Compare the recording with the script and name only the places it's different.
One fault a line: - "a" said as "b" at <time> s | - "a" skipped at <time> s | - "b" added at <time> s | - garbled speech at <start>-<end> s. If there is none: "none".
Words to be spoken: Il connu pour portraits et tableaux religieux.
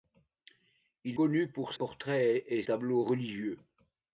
none